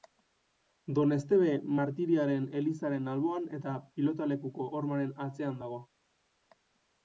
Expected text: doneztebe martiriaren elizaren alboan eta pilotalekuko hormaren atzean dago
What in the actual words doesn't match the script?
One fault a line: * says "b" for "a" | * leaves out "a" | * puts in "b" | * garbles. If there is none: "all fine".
all fine